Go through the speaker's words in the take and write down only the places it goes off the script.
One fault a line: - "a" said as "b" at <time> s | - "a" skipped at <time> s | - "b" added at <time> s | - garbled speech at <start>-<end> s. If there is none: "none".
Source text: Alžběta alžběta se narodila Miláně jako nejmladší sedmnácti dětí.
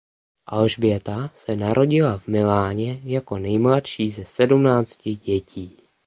- "alžběta" skipped at 1.3 s
- "v" added at 2.2 s
- "ze" added at 4.1 s